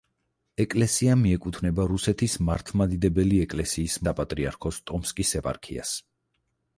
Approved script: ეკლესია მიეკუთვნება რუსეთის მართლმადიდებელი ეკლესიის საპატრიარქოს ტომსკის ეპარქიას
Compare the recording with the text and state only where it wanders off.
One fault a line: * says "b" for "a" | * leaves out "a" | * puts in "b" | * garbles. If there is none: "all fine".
all fine